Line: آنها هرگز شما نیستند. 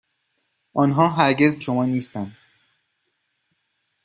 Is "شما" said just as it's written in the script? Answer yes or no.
yes